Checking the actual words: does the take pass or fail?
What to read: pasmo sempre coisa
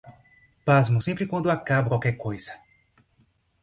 fail